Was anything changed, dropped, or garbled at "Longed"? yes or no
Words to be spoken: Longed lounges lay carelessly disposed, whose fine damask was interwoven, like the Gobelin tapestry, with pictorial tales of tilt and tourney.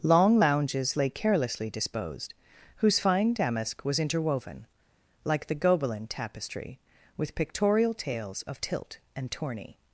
yes